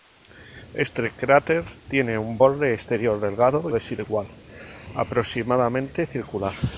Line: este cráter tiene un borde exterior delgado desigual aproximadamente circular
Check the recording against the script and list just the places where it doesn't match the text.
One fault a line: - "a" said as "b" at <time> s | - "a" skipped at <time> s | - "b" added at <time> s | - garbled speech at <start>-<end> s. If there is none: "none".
none